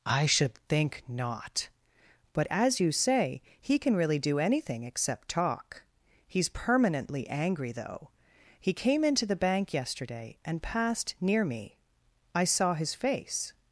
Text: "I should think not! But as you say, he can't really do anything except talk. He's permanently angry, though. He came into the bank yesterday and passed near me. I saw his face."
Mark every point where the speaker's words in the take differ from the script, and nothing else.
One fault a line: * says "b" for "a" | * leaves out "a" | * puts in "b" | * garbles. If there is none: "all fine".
* says "can" for "can't"